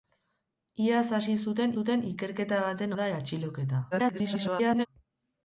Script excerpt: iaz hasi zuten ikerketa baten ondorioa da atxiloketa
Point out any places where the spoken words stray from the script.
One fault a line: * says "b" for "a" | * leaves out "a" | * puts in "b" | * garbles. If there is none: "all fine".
* puts in "zuten"
* leaves out "ondorioa"
* garbles